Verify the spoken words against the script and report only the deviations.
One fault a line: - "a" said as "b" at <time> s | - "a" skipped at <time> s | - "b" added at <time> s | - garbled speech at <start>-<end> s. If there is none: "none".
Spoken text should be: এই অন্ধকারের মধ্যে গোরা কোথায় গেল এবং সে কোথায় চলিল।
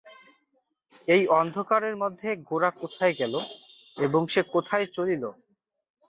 none